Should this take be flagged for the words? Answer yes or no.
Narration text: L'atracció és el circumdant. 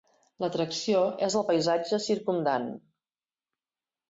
yes